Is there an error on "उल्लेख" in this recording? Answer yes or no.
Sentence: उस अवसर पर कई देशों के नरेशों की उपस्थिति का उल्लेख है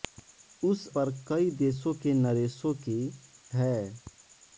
yes